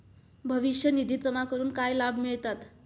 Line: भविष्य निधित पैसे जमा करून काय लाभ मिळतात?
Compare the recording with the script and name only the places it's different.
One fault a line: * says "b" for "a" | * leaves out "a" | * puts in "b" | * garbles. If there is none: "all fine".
* leaves out "पैसे"